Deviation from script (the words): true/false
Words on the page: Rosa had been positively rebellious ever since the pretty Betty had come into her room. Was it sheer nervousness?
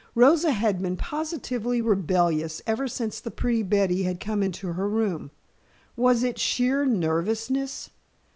false